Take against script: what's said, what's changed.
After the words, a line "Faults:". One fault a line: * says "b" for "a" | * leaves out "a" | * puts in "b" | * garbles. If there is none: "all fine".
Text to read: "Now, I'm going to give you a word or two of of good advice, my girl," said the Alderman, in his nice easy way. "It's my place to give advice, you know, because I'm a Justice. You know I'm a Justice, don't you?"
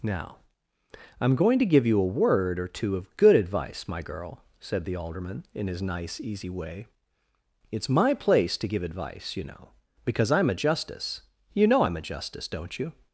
"Now, I'm going to give you a word or two of good advice, my girl," said the Alderman, in his nice easy way. "It's my place to give advice, you know, because I'm a Justice. You know I'm a Justice, don't you?"
Faults:
* leaves out "of"